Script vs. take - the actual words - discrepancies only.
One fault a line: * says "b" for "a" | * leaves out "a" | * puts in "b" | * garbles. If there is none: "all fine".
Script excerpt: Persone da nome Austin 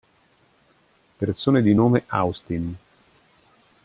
* says "di" for "da"